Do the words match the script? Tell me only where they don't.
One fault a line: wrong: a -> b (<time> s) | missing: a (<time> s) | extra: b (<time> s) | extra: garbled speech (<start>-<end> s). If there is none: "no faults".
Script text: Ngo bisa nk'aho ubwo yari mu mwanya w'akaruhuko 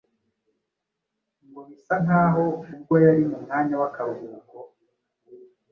no faults